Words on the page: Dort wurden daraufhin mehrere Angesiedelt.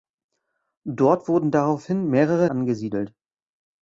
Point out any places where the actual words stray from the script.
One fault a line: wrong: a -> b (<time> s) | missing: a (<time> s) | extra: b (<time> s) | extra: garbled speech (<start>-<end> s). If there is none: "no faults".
no faults